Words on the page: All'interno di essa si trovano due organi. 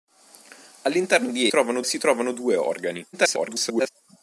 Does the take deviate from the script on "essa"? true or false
true